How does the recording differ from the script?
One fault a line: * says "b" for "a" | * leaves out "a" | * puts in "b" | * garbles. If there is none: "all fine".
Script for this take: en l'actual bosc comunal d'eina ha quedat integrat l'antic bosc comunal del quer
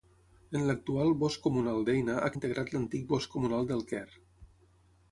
* leaves out "quedat"